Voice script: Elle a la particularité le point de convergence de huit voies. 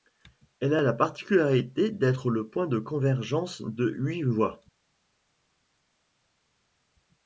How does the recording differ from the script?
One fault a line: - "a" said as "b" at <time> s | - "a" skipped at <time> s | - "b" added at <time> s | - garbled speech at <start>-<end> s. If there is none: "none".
- "d'être" added at 1.9 s